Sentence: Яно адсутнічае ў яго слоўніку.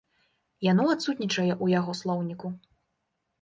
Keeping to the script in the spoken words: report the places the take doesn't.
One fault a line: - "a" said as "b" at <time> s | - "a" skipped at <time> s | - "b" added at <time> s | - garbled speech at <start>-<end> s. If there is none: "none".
none